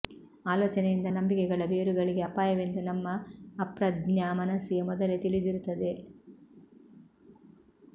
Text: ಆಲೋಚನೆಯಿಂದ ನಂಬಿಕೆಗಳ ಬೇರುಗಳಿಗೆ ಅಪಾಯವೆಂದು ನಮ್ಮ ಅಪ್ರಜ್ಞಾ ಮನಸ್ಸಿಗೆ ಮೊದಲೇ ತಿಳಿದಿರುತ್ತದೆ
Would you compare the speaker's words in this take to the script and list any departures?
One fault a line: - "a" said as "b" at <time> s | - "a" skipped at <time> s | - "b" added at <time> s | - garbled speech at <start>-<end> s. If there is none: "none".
none